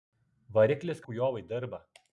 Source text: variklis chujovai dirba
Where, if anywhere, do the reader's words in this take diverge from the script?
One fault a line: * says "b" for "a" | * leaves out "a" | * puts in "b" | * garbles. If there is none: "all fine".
all fine